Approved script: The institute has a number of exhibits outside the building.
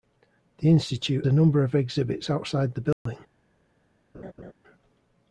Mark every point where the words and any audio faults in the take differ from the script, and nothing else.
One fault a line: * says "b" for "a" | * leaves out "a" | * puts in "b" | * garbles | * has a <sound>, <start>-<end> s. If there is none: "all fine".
* leaves out "has"
* has a dropout, 2.9-3.1 s
* has a laugh, 4.1-4.5 s